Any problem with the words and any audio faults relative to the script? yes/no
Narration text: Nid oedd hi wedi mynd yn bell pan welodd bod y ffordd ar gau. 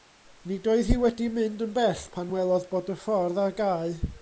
no